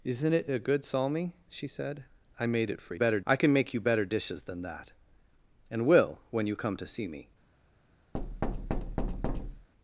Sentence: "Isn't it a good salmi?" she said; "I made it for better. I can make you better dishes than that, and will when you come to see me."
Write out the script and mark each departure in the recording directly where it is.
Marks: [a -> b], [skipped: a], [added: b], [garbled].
"Isn't it a good salmi?" she said; "I made it for better. I can make you better dishes than that, and will when you come to see me."